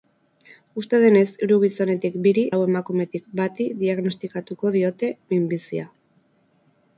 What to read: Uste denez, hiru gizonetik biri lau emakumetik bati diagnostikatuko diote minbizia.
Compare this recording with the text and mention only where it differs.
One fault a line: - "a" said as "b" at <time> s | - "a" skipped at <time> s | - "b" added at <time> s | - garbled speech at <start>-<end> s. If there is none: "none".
none